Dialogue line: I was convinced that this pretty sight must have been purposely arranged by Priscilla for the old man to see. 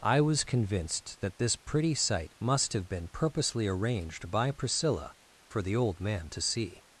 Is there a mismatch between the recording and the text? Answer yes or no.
no